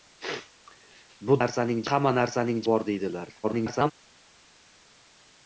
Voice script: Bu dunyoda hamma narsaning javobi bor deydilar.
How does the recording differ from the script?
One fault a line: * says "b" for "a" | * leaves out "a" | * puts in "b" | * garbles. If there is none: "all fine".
* says "narsaning" for "dunyoda"
* leaves out "javobi"
* garbles